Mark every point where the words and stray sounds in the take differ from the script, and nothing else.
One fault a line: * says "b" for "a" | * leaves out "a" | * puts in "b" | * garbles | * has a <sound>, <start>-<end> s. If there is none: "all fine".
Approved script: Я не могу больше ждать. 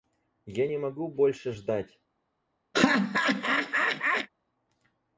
* has a laugh, 2.7-4.3 s